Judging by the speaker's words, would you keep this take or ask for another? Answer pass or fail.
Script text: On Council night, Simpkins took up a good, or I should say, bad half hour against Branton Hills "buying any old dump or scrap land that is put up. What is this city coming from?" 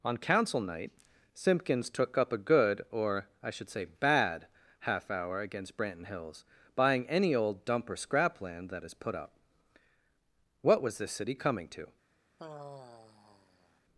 fail